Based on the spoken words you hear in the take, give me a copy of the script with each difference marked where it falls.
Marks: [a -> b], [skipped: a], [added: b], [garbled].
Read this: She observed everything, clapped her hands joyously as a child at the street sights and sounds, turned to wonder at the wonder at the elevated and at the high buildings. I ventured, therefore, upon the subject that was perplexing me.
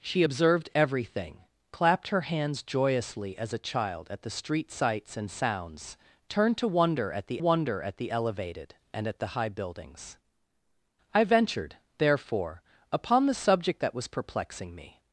She observed everything, clapped her hands joyously as a child at the street sights and sounds, turned to wonder at the wonder at the elevated and at the high buildings. I ventured, therefore, upon the subject that was perplexing me.